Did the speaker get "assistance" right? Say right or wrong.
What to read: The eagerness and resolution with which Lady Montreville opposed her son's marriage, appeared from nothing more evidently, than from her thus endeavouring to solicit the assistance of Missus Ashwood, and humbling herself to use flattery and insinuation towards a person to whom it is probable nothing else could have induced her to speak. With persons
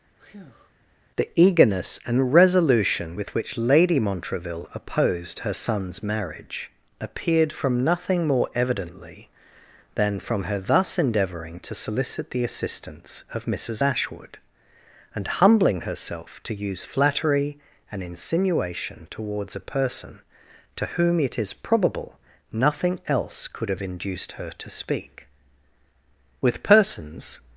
right